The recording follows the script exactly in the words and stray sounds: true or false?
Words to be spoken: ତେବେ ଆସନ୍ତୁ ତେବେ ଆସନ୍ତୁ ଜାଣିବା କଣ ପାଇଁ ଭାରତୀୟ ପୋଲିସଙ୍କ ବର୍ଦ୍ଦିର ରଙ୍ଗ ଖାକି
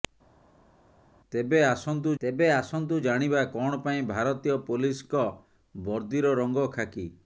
true